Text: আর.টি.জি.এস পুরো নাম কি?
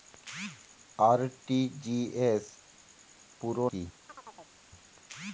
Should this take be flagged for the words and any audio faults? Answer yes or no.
yes